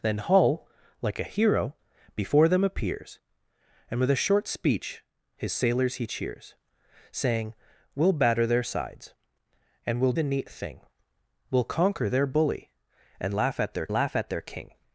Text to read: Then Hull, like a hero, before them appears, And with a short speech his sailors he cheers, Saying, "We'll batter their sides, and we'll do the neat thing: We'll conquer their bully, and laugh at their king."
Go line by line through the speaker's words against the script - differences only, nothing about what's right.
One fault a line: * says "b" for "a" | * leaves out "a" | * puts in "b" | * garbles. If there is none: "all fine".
* leaves out "do"
* puts in "laugh at their"